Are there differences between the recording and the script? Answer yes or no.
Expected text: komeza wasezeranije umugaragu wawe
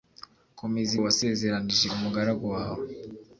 no